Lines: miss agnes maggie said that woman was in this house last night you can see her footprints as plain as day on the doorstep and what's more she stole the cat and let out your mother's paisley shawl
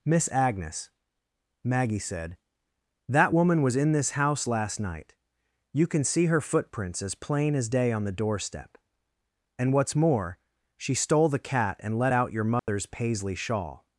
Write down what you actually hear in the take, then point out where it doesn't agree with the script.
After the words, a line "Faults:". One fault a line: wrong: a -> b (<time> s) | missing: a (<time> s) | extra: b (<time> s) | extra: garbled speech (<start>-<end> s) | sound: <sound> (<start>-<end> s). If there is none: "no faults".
miss agnes maggie said that woman was in this house last night you can see her footprints as plain as day on the doorstep and what's more she stole the cat and let out your mother's paisley shawl
Faults:
sound: dropout (12.6-12.7 s)